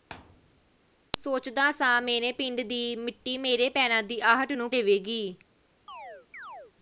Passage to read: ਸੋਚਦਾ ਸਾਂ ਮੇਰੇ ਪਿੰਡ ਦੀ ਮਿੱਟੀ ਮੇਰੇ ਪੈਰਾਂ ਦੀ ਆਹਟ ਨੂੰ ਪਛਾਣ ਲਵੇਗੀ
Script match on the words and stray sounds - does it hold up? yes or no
no